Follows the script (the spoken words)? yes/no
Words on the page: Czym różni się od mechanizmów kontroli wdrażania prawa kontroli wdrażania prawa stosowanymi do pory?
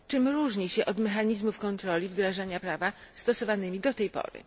no